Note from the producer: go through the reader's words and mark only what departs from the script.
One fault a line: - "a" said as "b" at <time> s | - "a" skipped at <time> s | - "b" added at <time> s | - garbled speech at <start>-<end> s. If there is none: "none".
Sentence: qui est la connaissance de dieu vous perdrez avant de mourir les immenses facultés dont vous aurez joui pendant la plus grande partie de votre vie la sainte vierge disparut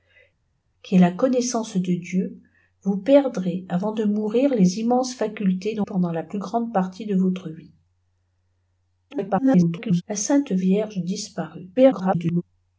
- "vous aurez joui" skipped at 5.9 s
- garbled speech at 9.1-10.0 s
- garbled speech at 11.8-12.4 s